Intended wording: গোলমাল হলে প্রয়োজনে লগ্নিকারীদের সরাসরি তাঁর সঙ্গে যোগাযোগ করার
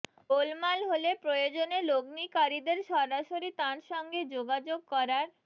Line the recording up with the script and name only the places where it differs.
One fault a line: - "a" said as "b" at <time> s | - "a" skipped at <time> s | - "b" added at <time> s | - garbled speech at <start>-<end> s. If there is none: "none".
none